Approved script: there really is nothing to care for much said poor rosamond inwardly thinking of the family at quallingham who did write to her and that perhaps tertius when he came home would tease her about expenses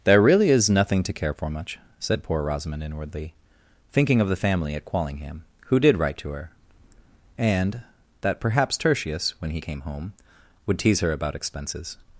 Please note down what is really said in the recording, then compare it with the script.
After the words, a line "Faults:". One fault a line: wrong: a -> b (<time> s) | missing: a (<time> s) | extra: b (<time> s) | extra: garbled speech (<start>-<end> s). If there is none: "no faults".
there really is nothing to care for much said poor rosamond inwardly thinking of the family at quallingham who did write to her and that perhaps tertius when he came home would tease her about expenses
Faults:
no faults